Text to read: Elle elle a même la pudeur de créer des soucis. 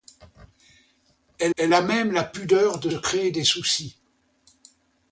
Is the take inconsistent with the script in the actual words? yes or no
no